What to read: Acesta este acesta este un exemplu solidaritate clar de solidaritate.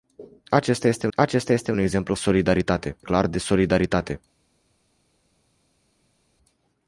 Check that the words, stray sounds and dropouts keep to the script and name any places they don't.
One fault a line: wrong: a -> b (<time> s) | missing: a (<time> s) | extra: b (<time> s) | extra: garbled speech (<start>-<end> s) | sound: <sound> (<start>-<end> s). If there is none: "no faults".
no faults